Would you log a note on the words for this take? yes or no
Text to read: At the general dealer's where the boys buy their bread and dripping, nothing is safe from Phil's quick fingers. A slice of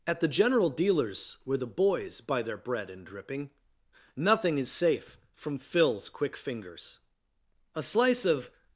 no